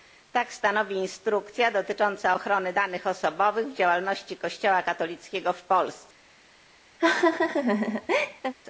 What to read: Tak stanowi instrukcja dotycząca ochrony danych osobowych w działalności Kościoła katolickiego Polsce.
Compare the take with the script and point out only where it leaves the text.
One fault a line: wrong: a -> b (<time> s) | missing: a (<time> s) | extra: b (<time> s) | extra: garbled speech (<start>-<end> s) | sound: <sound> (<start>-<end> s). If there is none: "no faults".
extra: w (5.5 s)
sound: laugh (7.0-8.5 s)